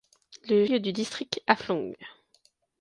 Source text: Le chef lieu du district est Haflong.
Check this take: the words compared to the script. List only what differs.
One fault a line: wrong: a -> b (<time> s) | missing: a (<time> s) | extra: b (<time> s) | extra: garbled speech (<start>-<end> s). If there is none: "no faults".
missing: chef (0.7 s)
missing: est (1.4 s)